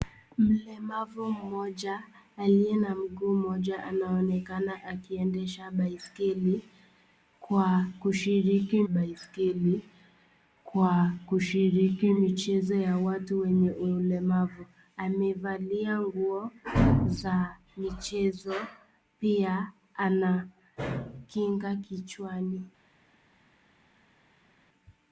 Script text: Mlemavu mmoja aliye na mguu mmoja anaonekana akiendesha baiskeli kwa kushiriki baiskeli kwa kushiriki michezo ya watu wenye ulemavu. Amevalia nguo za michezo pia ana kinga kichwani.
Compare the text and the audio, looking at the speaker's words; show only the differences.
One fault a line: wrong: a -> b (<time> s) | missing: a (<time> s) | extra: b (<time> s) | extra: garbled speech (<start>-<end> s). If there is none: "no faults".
no faults